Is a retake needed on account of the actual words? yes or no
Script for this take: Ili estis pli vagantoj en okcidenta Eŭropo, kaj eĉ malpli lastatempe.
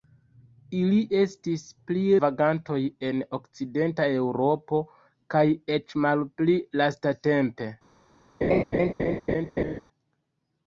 no